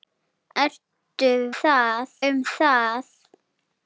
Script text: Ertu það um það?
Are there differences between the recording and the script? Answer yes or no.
no